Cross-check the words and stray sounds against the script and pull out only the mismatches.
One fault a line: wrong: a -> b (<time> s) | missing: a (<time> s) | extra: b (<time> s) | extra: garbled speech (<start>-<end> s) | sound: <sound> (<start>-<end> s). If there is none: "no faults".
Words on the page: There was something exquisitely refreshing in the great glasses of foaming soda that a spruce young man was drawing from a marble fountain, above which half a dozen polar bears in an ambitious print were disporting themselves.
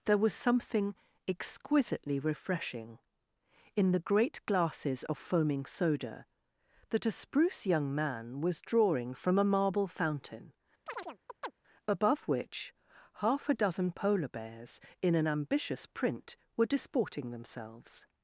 sound: chirp (10.9-11.5 s)